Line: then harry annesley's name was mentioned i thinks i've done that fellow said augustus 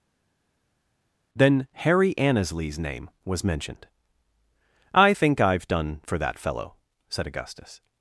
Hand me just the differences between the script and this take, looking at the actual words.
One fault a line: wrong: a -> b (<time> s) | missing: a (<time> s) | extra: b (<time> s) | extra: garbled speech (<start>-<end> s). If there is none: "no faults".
wrong: thinks -> think (5.1 s)
extra: for (6.0 s)